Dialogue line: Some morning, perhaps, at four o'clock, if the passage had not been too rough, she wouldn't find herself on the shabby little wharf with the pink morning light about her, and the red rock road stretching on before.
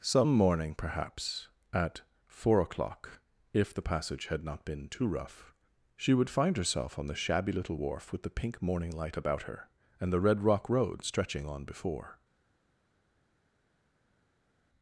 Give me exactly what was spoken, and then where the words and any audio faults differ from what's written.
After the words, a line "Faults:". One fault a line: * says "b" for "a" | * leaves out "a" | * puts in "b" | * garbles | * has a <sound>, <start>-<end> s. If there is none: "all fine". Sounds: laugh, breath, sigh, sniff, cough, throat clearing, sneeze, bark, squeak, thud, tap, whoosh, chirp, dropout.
Some morning, perhaps, at four o'clock, if the passage had not been too rough, she would find herself on the shabby little wharf with the pink morning light about her, and the red rock road stretching on before.
Faults:
* says "would" for "wouldn't"